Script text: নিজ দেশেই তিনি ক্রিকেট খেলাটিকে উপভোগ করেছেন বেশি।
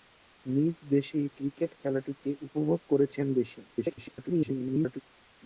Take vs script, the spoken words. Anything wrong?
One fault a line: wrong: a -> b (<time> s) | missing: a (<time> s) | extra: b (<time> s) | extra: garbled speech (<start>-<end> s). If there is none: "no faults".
missing: তিনি (1.3 s)
extra: garbled speech (3.7-5.0 s)